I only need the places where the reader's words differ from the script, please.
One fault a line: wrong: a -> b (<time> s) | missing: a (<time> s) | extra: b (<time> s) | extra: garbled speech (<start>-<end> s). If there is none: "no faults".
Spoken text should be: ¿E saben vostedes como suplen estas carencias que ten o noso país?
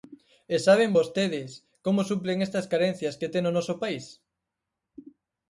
no faults